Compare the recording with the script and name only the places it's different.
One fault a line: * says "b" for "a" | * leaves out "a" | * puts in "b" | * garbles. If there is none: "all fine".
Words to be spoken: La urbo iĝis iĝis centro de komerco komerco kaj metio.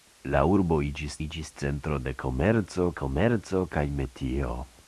all fine